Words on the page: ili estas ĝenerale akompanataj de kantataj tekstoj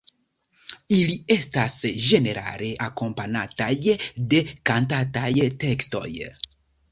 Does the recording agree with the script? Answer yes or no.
yes